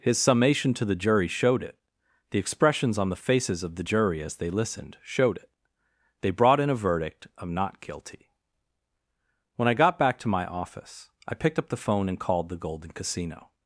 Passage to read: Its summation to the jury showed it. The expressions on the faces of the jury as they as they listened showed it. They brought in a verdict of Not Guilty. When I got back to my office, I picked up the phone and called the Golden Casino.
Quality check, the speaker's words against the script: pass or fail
fail